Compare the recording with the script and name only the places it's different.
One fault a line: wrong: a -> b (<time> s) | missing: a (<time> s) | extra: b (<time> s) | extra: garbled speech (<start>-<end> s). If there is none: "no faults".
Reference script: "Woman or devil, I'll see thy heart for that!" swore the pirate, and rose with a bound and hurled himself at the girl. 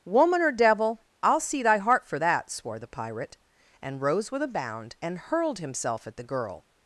no faults